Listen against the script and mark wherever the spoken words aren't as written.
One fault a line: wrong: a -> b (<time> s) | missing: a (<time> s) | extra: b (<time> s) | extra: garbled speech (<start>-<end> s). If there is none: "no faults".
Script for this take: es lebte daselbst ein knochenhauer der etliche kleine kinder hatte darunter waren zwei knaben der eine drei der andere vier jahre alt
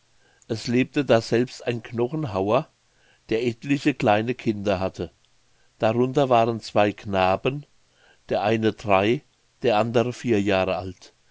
no faults